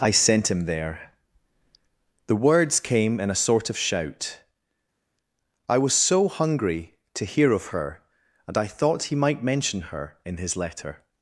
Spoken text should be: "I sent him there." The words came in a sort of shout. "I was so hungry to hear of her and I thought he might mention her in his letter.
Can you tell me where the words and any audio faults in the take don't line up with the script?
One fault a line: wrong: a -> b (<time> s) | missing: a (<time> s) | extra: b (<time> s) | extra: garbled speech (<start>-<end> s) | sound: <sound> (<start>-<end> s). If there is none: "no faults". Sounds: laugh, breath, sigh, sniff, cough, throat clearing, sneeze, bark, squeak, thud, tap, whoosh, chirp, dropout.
no faults